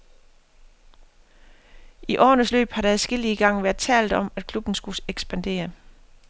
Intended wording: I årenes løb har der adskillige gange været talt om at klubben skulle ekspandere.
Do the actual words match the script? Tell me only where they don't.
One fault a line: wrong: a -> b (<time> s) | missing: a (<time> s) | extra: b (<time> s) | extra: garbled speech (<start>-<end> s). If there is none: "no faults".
no faults